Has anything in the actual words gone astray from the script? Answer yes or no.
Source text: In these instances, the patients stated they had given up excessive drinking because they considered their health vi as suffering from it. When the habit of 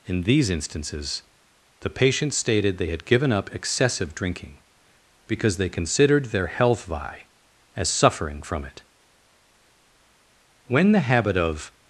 no